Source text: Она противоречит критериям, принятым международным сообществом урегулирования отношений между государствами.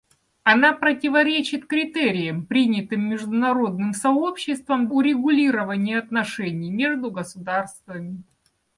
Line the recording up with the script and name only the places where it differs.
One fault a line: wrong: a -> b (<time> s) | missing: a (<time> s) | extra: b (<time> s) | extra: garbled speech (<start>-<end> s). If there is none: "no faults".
no faults